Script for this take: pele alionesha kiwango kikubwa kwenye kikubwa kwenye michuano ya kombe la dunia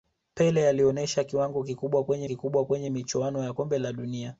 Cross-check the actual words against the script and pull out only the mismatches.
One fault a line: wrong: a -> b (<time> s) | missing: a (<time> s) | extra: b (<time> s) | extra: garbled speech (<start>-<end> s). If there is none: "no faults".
no faults